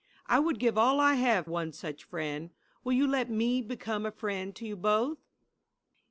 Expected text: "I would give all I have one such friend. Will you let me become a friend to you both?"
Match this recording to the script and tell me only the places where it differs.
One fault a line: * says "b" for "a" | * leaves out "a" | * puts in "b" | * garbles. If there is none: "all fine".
all fine